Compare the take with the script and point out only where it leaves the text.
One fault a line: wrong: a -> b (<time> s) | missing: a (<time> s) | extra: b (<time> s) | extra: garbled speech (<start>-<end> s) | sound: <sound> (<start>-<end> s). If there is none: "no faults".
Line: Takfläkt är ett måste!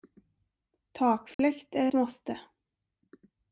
sound: dropout (1.3-1.4 s)
missing: ett (1.9 s)